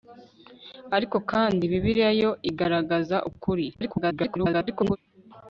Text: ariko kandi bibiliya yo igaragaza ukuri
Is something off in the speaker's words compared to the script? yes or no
yes